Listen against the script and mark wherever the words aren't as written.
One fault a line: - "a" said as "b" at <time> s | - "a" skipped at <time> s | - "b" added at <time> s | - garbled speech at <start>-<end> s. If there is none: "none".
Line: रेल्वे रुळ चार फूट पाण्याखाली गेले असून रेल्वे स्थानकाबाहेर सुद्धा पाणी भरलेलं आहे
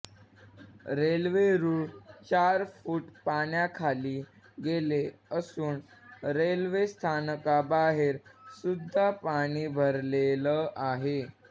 none